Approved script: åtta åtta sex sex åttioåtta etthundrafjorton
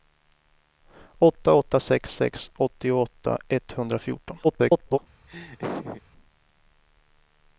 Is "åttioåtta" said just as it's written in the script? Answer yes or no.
yes